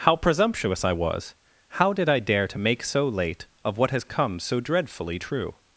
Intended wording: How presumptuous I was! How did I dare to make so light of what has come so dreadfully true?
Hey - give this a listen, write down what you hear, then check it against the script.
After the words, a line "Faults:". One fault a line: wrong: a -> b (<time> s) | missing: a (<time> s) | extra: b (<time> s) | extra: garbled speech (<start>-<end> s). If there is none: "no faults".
How presumptuous I was! How did I dare to make so late of what has come so dreadfully true?
Faults:
wrong: light -> late (3.1 s)